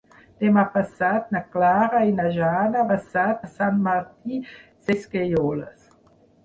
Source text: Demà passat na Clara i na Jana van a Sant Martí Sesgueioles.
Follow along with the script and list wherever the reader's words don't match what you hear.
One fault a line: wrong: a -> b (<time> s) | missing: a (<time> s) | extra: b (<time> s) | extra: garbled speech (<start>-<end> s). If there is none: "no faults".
wrong: van -> passat (2.9 s)